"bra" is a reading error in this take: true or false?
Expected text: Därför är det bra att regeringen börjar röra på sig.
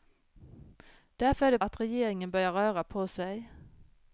true